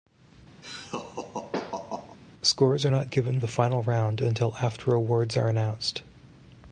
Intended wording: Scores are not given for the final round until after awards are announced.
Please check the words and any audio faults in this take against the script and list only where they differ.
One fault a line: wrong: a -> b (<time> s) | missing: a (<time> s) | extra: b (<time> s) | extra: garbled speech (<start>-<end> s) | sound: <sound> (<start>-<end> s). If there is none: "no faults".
sound: laugh (0.6-2.2 s)
missing: for (3.4 s)